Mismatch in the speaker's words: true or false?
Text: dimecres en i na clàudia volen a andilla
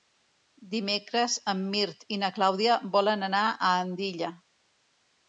true